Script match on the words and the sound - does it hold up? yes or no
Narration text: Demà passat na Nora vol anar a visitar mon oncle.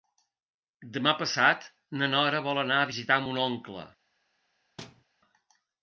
no